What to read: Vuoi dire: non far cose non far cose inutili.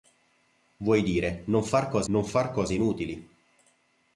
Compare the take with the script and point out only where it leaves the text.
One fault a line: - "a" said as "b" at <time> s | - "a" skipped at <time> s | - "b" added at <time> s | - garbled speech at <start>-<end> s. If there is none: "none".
none